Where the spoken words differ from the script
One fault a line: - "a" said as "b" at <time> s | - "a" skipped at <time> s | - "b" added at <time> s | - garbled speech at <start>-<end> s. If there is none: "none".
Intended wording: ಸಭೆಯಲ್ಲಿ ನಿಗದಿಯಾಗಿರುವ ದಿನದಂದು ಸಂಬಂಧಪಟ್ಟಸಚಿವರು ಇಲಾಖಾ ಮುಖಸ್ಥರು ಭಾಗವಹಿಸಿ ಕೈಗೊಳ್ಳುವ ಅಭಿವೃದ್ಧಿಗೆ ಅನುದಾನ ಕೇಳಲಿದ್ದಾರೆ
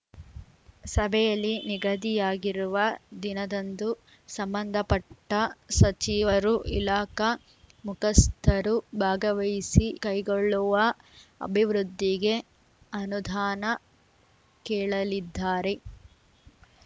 none